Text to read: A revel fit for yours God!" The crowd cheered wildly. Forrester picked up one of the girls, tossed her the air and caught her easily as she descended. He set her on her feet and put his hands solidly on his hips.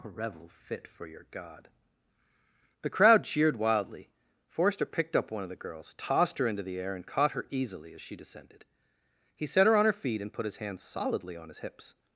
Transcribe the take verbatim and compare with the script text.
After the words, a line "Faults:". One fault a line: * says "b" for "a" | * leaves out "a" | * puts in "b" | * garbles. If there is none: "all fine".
A revel fit for your God!" The crowd cheered wildly. Forrester picked up one of the girls, tossed her into the air and caught her easily as she descended. He set her on her feet and put his hands solidly on his hips.
Faults:
* says "your" for "yours"
* puts in "into"